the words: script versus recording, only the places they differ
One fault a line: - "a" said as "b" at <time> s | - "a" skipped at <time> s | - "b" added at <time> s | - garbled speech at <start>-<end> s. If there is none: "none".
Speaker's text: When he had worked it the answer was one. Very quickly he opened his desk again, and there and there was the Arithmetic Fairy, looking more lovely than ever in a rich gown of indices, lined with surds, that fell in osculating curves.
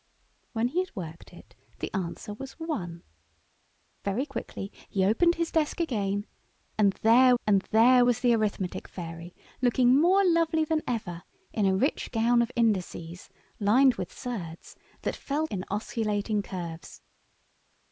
none